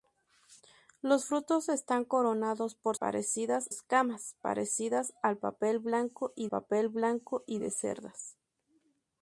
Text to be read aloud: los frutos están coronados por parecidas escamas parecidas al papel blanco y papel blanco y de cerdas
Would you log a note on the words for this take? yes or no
no